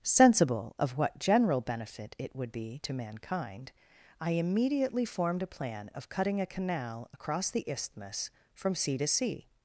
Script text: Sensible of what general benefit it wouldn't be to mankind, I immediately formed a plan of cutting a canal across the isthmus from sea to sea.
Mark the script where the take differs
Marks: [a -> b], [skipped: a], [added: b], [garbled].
Sensible of what general benefit it [wouldn't -> would] be to mankind, I immediately formed a plan of cutting a canal across the isthmus from sea to sea.